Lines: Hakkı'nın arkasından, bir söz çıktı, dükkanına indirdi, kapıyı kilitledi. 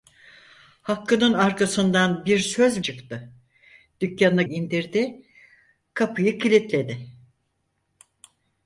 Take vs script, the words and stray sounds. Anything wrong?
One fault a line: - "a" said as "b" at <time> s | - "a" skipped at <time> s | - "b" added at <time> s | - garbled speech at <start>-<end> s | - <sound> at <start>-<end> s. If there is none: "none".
none